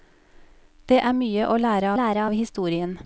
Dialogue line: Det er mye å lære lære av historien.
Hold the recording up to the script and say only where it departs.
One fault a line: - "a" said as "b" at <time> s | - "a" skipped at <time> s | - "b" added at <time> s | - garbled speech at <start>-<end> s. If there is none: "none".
none